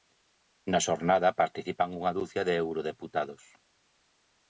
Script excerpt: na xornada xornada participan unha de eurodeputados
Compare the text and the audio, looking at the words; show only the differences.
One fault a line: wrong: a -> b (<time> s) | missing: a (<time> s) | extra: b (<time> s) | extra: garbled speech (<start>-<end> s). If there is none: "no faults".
missing: xornada (1.4 s)
extra: ducia (2.2 s)